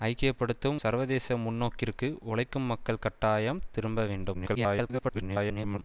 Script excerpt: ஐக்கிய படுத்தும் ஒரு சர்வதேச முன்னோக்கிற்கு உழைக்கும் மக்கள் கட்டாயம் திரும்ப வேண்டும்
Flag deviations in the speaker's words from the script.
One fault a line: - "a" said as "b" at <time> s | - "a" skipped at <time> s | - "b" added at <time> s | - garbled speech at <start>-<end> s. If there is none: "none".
- "ஒரு" skipped at 0.8 s
- garbled speech at 4.3-5.8 s